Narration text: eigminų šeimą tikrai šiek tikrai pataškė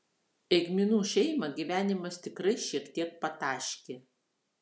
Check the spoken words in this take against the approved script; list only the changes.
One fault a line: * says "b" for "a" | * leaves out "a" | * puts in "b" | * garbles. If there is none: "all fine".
* puts in "gyvenimas"
* says "tiek" for "tikrai"